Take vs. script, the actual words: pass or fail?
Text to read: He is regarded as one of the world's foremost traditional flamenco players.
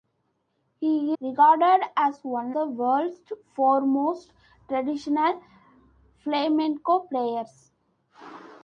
fail